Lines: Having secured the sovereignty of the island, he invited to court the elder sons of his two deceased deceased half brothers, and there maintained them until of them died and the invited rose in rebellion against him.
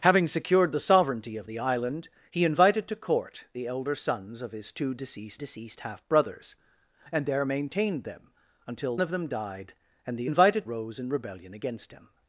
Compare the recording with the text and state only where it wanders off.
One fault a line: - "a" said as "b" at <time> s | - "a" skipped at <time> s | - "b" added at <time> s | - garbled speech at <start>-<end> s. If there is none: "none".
none